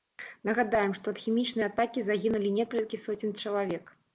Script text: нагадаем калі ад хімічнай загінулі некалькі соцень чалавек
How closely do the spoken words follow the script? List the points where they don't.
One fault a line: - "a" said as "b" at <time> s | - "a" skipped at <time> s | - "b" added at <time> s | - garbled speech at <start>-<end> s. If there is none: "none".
- "калі" said as "што" at 1.0 s
- "атакі" added at 1.7 s